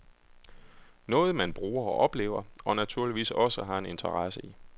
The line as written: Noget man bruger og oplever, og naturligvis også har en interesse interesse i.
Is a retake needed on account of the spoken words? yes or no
yes